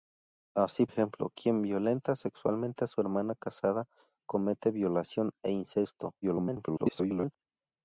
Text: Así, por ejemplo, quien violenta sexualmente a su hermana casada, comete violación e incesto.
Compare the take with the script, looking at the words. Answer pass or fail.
fail